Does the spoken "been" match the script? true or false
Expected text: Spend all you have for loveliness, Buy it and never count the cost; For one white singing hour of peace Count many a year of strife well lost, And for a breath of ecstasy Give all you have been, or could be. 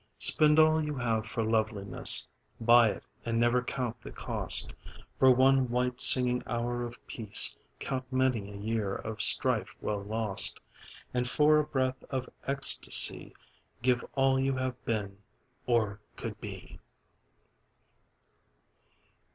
true